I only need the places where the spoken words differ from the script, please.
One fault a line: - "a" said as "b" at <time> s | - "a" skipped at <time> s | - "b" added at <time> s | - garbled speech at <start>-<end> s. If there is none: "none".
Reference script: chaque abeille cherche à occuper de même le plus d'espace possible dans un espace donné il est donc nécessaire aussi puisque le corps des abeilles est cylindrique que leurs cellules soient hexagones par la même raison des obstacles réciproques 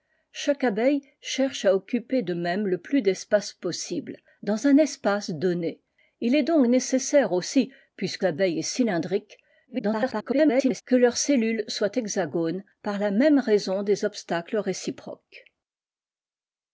- "le corps des" skipped at 8.2 s
- garbled speech at 9.7-10.8 s